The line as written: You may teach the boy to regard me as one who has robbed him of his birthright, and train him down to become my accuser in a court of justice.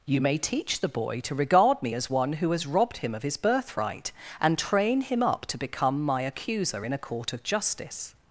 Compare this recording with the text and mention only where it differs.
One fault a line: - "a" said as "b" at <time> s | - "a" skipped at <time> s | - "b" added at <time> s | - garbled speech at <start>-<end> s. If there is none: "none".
- "down" said as "up" at 5.2 s